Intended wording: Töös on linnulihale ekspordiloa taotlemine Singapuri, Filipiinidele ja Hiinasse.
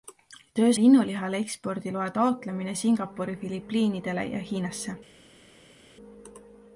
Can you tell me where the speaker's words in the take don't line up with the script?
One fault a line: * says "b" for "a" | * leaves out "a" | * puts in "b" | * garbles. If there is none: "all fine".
* leaves out "on"